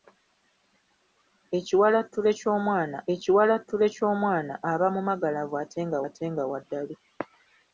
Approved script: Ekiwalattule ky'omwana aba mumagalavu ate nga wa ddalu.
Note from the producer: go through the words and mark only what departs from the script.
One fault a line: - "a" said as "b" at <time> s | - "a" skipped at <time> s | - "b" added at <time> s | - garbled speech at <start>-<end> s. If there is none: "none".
- "ekiwalattule ky'omwana" added at 3.1 s
- "ate nga" added at 6.1 s